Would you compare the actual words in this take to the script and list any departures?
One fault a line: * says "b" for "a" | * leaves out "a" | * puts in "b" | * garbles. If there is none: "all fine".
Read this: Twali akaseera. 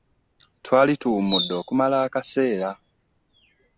* puts in "tuwummudde okumala"